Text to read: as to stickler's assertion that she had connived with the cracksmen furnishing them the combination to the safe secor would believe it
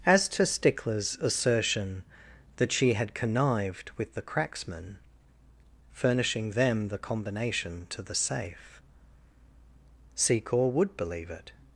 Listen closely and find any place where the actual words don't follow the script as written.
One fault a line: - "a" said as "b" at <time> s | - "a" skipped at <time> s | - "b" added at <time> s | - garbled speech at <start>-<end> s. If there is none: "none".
none